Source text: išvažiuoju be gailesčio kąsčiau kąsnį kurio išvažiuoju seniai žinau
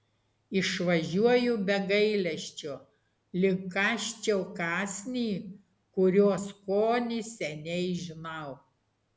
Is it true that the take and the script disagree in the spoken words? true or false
true